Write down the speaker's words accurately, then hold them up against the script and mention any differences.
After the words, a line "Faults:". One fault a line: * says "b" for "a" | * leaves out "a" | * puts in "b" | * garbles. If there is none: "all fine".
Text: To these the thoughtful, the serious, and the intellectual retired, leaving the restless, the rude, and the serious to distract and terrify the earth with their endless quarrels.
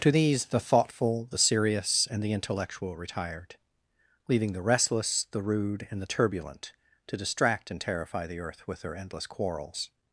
To these the thoughtful, the serious, and the intellectual retired, leaving the restless, the rude, and the turbulent to distract and terrify the earth with their endless quarrels.
Faults:
* says "turbulent" for "serious"